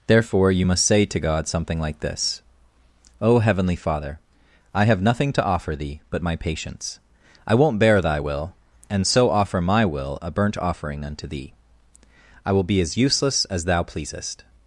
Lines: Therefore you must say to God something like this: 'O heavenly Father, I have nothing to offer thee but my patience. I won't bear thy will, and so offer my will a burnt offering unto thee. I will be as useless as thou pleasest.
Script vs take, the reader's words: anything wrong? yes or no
no